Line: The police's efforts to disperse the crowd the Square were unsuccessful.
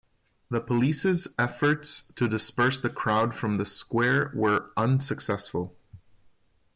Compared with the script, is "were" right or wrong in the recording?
right